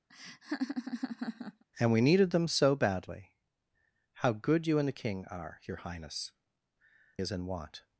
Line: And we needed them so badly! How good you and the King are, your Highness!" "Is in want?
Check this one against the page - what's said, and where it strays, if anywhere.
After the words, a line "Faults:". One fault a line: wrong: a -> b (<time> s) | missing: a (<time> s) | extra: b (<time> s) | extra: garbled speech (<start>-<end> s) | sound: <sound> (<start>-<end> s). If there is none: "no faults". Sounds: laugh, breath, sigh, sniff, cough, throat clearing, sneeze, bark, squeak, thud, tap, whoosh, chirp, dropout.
And we needed them so badly! How good you and the King are, your Highness!" "Is in want?
Faults:
sound: laugh (0.1-1.6 s)